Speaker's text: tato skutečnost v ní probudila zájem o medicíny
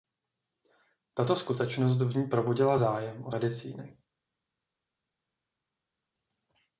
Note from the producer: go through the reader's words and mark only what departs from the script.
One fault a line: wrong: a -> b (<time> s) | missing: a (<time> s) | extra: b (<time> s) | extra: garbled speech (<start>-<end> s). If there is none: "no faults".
no faults